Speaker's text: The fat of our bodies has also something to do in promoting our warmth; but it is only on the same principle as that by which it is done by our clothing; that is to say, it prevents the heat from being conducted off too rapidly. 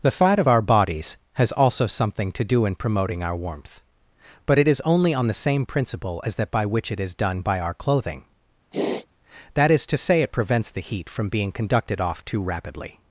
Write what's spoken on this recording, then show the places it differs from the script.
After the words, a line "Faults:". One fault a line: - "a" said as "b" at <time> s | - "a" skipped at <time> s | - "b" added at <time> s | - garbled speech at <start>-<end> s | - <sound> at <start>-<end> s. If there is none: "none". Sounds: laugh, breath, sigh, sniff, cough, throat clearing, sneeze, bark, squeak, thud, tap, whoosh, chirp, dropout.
The fat of our bodies has also something to do in promoting our warmth; but it is only on the same principle as that by which it is done by our clothing; that is to say, it prevents the heat from being conducted off too rapidly.
Faults:
- sniff at 8.7-9.1 s